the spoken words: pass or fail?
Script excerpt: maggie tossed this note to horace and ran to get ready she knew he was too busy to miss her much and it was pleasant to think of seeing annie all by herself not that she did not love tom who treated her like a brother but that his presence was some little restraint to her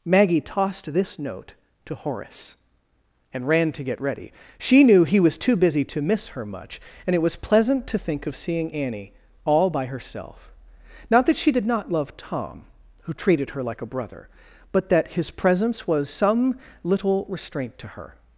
pass